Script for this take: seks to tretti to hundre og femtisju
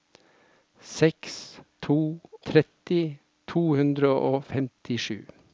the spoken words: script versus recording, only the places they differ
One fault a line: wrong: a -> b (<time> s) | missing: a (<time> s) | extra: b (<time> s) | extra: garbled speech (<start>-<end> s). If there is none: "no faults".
no faults